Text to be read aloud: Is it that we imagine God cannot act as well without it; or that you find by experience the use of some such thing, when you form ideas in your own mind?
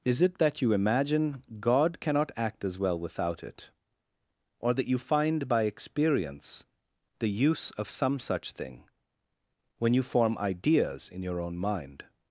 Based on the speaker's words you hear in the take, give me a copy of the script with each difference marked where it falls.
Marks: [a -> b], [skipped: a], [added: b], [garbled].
Is it that [we -> you] imagine God cannot act as well without it; or that you find by experience the use of some such thing, when you form ideas in your own mind?